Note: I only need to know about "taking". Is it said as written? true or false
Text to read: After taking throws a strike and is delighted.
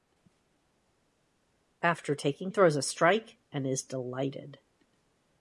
true